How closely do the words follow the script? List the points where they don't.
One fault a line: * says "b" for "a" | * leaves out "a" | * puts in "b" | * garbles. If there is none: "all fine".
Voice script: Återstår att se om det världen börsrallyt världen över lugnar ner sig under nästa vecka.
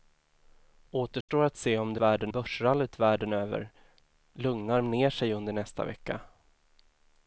all fine